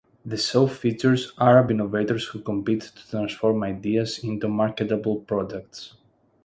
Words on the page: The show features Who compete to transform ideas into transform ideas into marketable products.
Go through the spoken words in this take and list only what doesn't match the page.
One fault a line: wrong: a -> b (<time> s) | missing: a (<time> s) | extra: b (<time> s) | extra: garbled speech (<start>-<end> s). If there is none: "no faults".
extra: Arab innovators (1.4 s)
missing: transform ideas into (4.5 s)